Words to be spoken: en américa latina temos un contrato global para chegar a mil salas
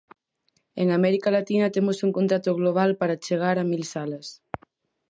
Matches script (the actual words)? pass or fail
pass